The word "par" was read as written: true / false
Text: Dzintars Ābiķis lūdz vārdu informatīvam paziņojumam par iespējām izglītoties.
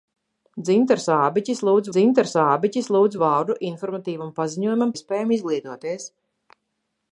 false